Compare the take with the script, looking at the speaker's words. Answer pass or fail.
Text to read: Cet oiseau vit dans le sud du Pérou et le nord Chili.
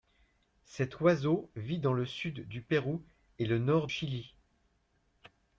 pass